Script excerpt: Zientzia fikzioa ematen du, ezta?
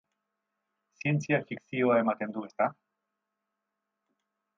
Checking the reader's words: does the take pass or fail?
pass